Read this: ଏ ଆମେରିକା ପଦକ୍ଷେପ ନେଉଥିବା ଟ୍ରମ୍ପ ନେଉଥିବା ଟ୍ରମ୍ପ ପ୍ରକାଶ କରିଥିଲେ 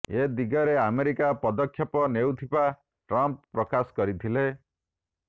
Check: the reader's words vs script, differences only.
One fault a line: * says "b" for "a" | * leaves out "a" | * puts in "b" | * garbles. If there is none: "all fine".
* puts in "ଦିଗରେ"
* leaves out "ନେଉଥିବା ଟ୍ରମ୍ପ"